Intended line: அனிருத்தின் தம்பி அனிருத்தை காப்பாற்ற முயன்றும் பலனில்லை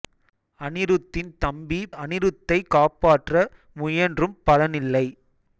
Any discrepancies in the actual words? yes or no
no